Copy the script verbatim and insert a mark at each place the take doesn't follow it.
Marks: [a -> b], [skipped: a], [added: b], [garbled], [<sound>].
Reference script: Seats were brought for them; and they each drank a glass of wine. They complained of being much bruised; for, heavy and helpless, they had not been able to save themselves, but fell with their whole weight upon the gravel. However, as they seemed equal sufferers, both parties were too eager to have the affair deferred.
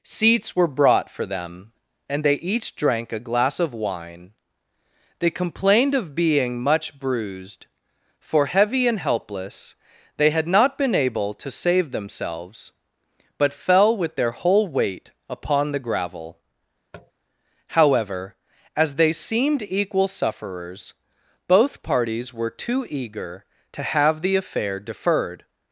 Seats were brought for them; and they each drank a glass of wine. They complained of being much bruised; for, heavy and helpless, they had not been able to save themselves, but fell with their whole weight upon the gravel. [tap] However, as they seemed equal sufferers, both parties were too eager to have the affair deferred.